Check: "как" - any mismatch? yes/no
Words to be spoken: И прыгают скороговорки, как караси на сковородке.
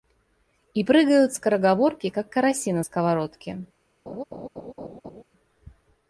no